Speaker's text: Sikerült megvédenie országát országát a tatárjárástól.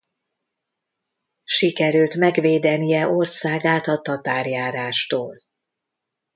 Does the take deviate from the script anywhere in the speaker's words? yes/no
yes